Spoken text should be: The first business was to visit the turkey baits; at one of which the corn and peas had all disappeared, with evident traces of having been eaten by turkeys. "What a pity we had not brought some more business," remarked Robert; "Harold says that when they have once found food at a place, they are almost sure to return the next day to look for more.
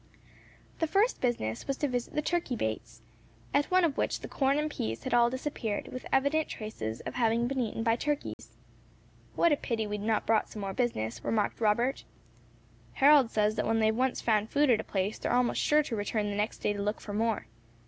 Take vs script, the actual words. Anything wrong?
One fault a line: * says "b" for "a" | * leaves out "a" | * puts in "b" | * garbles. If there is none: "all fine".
all fine